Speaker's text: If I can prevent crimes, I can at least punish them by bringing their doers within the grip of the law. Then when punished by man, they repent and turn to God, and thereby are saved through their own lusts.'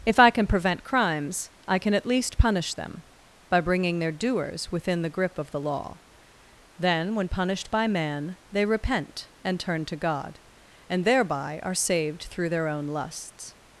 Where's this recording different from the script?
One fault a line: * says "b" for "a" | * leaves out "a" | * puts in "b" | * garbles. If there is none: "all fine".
all fine